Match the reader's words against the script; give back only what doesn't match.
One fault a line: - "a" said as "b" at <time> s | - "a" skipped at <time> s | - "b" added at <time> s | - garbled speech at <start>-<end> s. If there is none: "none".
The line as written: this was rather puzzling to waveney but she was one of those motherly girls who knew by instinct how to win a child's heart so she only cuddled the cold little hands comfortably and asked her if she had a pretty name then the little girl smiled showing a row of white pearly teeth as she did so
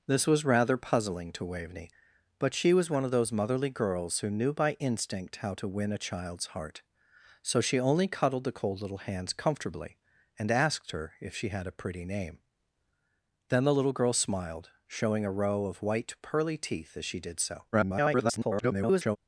- garbled speech at 17.7-19.2 s